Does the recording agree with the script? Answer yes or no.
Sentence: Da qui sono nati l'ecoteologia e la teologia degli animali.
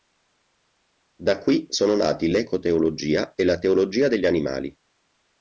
yes